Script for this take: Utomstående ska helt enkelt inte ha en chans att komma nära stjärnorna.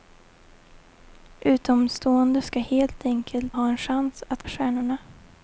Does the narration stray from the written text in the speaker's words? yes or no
yes